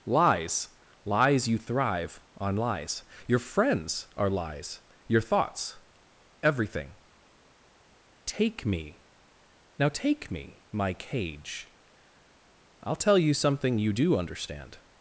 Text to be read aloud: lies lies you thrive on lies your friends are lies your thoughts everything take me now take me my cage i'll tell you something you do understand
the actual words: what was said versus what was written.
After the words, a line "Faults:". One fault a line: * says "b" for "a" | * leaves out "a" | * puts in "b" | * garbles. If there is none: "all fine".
lies lies you thrive on lies your friends are lies your thoughts everything take me now take me my cage i'll tell you something you do understand
Faults:
all fine